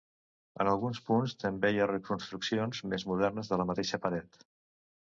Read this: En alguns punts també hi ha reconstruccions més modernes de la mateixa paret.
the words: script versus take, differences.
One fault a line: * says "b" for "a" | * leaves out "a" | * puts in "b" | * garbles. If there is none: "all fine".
all fine